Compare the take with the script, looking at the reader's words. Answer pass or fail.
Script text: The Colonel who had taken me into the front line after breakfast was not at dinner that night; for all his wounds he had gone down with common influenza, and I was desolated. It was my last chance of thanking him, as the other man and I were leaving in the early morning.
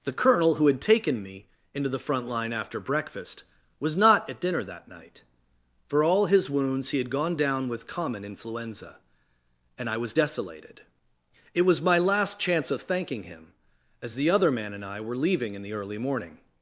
pass